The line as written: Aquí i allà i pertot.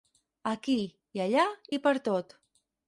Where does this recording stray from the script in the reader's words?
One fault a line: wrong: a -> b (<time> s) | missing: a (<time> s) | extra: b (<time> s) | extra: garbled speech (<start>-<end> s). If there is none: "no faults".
no faults